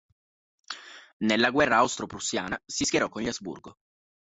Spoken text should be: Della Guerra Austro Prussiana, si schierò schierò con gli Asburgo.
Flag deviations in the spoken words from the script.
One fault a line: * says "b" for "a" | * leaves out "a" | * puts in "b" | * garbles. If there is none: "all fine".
* says "Nella" for "Della"
* leaves out "schierò"